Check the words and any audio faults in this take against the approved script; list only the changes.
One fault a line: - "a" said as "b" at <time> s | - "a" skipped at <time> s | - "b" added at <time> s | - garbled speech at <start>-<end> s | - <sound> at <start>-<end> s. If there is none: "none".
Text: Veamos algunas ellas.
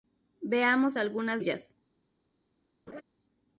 - laugh at 2.9-3.0 s